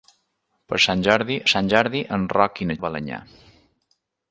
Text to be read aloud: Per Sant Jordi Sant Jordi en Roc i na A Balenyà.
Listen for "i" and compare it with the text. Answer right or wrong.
right